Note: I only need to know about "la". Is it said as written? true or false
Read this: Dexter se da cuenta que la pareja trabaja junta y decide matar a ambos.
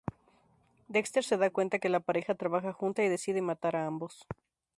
true